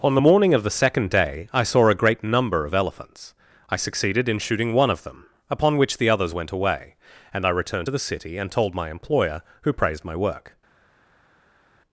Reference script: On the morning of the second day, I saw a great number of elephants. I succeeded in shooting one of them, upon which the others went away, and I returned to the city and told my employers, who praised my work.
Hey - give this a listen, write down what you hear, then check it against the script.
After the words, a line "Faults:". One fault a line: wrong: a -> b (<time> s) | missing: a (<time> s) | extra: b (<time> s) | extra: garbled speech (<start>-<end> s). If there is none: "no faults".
On the morning of the second day, I saw a great number of elephants. I succeeded in shooting one of them, upon which the others went away, and I returned to the city and told my employer, who praised my work.
Faults:
wrong: employers -> employer (8.9 s)